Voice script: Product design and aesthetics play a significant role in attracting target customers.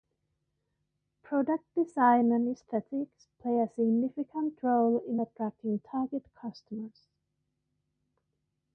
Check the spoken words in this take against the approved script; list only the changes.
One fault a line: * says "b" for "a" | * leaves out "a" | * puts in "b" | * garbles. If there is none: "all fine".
all fine